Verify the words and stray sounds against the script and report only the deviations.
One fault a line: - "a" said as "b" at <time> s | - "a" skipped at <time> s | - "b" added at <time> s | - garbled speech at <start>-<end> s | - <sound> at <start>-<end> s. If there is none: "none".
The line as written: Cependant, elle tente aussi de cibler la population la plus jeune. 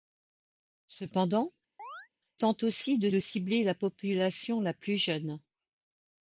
- "elle" skipped at 1.5 s
- chirp at 1.8-2.1 s
- "de" added at 3.1 s